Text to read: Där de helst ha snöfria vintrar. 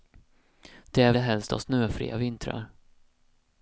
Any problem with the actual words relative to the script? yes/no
no